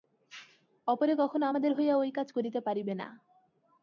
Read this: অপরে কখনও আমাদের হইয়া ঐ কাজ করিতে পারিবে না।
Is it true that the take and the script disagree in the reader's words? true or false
false